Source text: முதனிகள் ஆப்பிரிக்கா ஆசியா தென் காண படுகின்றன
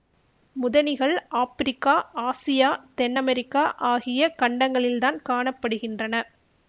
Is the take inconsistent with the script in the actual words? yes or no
yes